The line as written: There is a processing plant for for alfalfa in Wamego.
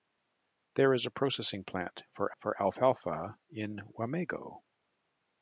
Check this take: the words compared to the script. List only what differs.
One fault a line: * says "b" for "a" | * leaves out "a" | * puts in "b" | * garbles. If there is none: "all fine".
all fine